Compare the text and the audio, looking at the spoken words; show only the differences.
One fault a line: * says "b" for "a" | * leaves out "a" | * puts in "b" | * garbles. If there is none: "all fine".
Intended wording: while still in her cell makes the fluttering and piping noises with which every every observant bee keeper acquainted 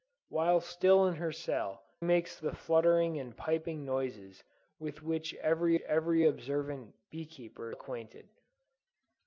all fine